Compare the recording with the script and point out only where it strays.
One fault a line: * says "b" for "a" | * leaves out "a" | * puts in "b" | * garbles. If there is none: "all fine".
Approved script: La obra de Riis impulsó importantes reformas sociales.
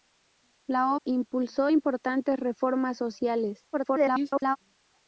* leaves out "obra de Riis"
* garbles